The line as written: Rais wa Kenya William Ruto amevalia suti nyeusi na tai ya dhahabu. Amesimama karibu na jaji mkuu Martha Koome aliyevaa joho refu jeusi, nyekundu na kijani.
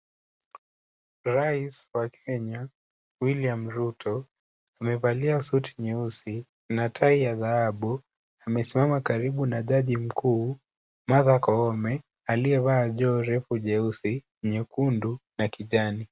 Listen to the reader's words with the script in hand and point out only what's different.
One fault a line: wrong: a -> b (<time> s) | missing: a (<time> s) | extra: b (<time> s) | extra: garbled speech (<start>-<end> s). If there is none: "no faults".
no faults